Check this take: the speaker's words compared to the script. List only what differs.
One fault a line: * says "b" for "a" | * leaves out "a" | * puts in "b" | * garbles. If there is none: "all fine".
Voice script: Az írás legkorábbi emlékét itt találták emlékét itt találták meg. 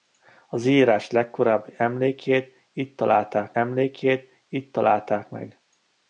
all fine